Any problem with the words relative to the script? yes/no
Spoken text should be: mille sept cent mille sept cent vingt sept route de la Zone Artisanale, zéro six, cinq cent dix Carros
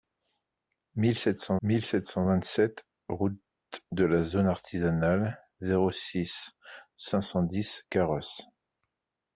no